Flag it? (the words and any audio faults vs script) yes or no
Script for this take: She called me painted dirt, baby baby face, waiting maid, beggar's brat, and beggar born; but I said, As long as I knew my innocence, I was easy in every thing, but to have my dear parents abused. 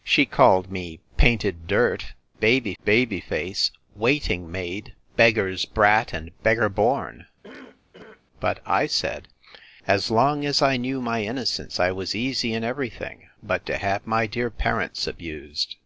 yes